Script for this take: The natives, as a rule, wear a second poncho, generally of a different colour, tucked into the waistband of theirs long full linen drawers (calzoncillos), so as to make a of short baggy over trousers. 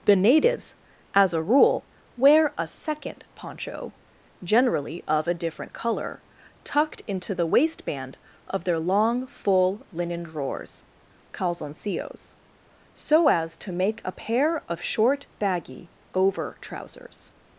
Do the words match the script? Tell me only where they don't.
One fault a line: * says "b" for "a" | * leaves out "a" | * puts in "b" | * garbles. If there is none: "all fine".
* says "their" for "theirs"
* puts in "pair"